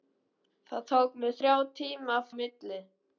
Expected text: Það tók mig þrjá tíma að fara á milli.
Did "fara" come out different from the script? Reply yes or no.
yes